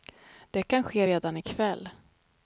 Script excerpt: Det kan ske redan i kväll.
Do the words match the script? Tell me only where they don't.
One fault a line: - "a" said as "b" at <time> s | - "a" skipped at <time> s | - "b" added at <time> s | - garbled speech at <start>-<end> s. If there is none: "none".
none